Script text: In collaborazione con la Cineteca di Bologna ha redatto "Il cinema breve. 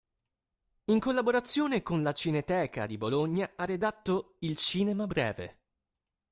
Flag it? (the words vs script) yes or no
no